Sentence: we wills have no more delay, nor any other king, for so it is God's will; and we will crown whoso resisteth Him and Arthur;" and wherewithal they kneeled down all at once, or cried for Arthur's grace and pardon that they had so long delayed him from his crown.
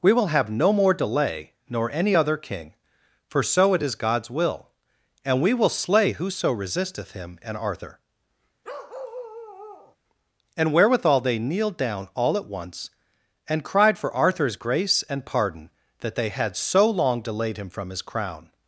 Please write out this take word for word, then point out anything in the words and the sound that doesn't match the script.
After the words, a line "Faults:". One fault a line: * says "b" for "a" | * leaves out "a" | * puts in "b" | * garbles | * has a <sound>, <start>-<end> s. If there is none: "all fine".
we will have no more delay, nor any other king, for so it is God's will; and we will slay whoso resisteth Him and Arthur;" and wherewithal they kneeled down all at once, and cried for Arthur's grace and pardon that they had so long delayed him from his crown.
Faults:
* says "will" for "wills"
* says "slay" for "crown"
* has a bark, 8.6-10.0 s
* says "and" for "or"